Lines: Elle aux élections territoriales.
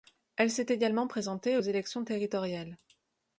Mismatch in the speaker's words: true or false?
true